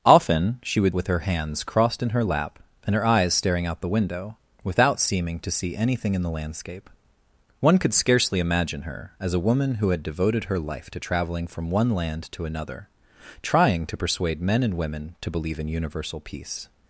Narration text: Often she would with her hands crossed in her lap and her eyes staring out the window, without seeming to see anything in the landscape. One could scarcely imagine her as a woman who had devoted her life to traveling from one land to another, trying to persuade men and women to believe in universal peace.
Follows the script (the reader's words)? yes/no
yes